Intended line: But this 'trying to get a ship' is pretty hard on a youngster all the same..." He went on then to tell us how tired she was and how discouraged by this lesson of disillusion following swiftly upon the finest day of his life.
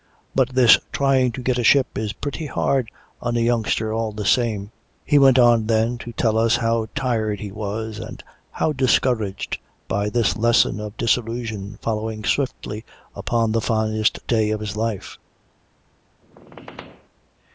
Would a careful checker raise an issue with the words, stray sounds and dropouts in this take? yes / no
yes